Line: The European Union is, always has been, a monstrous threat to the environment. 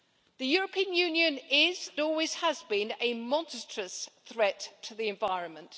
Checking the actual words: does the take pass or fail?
pass